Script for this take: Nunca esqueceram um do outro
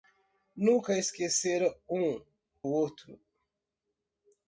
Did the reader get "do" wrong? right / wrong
wrong